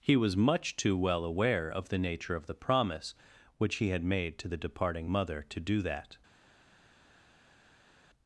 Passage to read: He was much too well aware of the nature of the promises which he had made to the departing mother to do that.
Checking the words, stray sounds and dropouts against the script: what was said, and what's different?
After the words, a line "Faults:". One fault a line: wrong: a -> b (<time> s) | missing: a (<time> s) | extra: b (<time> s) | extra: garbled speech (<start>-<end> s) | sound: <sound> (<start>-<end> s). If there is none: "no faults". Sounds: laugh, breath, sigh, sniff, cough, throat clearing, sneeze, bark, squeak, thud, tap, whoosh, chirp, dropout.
He was much too well aware of the nature of the promise which he had made to the departing mother to do that.
Faults:
wrong: promises -> promise (2.5 s)